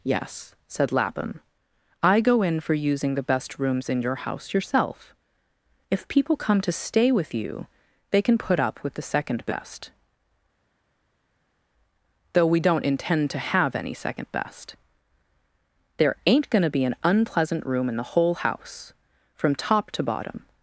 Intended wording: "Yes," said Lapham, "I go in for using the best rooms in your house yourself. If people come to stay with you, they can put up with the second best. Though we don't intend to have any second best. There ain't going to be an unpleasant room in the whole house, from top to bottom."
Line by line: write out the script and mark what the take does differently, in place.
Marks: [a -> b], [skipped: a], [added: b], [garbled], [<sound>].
"Yes," said Lapham, "I go in for using the best rooms in your house yourself. If people come to stay with you, they can put up with the second best. Though we don't intend to have any second best. There ain't going to be an unpleasant room in the whole house, from top to bottom."